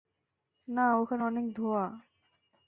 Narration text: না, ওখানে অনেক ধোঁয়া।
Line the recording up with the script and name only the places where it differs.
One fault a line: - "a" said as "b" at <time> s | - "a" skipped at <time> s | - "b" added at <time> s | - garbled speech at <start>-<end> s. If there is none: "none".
none